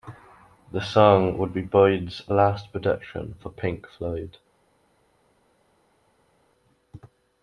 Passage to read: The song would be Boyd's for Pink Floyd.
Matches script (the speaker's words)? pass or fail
fail